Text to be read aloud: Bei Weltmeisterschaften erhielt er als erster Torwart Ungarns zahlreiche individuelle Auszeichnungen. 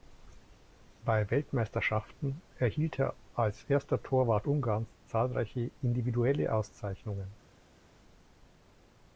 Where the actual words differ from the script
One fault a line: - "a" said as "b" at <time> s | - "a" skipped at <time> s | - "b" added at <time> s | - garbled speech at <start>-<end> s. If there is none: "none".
none